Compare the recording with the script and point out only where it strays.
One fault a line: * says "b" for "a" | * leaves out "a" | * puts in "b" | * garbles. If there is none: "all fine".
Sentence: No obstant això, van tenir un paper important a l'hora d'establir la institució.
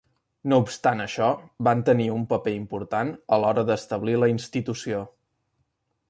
all fine